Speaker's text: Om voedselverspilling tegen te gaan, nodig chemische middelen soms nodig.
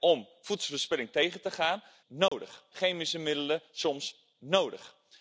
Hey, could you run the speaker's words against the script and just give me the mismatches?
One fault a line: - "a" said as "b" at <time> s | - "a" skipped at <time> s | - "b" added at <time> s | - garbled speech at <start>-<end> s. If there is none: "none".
none